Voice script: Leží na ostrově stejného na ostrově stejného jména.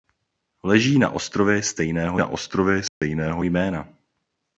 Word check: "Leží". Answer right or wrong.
right